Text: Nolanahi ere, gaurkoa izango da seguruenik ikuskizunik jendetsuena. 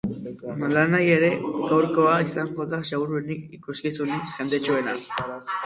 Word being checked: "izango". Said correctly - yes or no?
yes